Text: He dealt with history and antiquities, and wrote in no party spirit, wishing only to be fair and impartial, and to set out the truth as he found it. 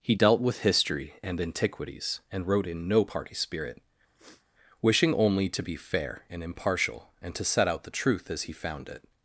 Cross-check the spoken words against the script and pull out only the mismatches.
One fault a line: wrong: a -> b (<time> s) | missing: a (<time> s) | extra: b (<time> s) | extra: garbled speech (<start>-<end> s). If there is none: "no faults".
no faults